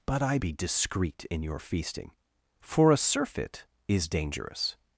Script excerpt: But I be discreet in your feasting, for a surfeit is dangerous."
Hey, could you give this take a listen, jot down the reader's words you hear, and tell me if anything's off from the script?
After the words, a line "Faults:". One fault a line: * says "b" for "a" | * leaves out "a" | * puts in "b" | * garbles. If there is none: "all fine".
But I be discreet in your feasting, for a surfeit is dangerous."
Faults:
all fine